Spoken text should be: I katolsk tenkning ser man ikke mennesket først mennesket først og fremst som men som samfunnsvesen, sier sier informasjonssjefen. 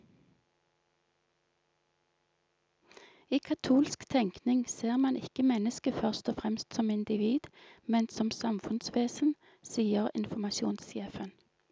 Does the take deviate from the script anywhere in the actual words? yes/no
yes